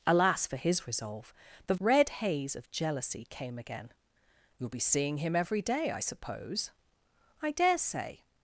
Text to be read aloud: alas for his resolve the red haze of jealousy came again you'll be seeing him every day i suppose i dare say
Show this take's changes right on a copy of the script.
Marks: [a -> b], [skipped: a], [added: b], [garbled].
alas for his resolve the red haze of jealousy came again you'll be seeing him every day i suppose i dare say